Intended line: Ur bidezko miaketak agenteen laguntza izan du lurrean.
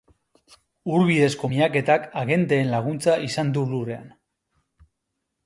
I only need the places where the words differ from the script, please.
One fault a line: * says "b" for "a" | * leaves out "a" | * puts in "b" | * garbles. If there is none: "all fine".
all fine